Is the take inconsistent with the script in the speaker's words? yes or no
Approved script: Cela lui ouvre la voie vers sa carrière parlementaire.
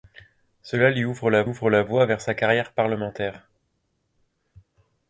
yes